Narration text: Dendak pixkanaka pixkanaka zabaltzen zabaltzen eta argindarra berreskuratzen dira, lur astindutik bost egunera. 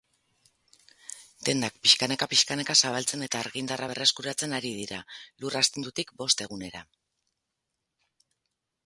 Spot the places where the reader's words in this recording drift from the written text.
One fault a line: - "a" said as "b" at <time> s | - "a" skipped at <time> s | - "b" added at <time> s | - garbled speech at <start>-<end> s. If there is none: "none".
- "zabaltzen" skipped at 3.2 s
- "ari" added at 4.6 s